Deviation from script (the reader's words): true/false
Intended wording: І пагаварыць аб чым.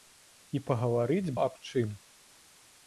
false